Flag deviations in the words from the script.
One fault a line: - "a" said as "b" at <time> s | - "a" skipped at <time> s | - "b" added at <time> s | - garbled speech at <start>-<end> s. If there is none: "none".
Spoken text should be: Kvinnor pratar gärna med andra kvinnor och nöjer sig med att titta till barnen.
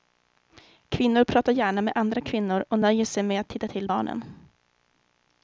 none